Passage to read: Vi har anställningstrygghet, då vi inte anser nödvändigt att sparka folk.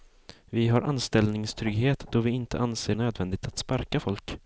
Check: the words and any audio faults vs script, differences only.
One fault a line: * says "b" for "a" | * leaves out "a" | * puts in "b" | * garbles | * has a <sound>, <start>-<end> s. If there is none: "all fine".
all fine